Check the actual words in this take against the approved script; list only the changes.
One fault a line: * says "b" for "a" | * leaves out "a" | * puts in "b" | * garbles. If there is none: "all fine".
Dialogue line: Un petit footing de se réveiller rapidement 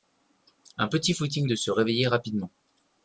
all fine